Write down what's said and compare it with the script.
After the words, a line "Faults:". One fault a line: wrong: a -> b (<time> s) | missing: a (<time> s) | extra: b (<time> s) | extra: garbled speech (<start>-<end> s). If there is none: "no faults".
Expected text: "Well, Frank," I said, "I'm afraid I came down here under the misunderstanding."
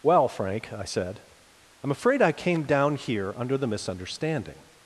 "Well, Frank," I said, "I'm afraid I came down here under the misunderstanding."
Faults:
no faults